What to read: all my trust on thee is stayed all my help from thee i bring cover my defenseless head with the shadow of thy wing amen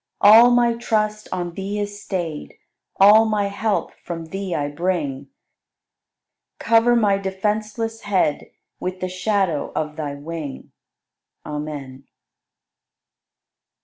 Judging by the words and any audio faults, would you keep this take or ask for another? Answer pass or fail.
pass